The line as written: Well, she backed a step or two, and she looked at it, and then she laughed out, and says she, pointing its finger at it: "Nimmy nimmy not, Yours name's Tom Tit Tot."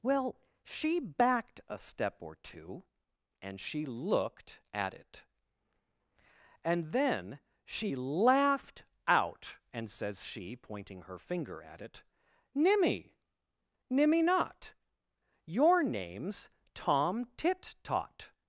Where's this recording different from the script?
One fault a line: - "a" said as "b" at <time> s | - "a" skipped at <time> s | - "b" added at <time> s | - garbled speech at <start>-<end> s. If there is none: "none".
- "its" said as "her" at 11.0 s
- "Yours" said as "Your" at 15.4 s